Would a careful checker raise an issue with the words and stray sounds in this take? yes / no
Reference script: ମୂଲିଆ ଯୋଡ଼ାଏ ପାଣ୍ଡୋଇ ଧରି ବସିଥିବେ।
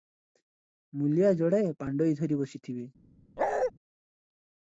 yes